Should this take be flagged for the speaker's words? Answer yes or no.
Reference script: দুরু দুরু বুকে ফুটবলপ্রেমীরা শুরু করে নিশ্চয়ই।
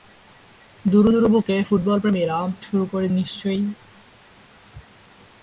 no